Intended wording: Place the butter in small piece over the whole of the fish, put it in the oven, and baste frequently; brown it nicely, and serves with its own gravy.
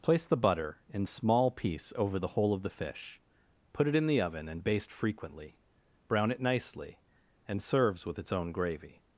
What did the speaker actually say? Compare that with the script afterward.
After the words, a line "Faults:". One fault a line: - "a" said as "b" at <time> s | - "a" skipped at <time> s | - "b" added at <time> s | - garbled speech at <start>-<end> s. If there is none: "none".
Place the butter in small piece over the whole of the fish, put it in the oven, and baste frequently; brown it nicely, and serves with its own gravy.
Faults:
none